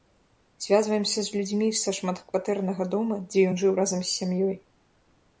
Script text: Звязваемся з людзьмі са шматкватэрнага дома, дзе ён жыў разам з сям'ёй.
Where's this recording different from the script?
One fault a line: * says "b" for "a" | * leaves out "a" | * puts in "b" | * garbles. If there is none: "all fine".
all fine